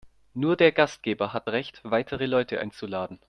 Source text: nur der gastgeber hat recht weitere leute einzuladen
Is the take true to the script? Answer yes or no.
yes